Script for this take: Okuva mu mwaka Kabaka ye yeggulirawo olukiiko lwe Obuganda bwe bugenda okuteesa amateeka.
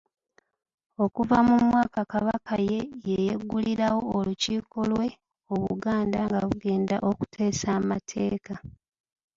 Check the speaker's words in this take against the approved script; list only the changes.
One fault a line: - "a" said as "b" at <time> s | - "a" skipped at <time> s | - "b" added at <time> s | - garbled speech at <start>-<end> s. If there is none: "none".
- "bwe" said as "nga" at 6.3 s